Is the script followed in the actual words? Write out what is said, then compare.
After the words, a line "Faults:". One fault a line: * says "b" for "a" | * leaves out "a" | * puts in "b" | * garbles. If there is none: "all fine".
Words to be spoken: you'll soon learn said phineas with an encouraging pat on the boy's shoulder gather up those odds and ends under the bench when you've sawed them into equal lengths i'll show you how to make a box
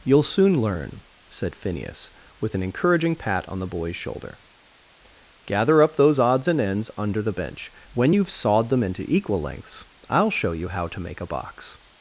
you'll soon learn said phineas with an encouraging pat on the boy's shoulder gather up those odds and ends under the bench when you've sawed them into equal lengths i'll show you how to make a box
Faults:
all fine